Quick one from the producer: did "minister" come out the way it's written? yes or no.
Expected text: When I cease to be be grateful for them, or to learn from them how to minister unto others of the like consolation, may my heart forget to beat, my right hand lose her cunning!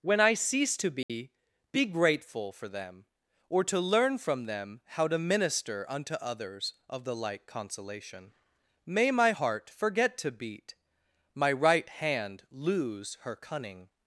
yes